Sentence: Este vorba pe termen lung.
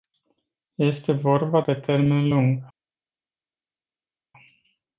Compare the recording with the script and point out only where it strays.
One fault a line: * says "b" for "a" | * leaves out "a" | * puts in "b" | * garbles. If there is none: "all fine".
all fine